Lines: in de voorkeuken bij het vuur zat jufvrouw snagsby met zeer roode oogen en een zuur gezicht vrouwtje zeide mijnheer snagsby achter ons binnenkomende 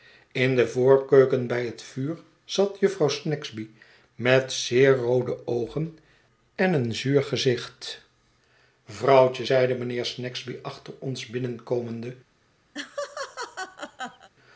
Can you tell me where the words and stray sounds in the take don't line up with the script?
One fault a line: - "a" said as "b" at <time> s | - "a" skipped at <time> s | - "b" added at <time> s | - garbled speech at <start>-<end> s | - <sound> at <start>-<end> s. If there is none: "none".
- laugh at 12.7-14.3 s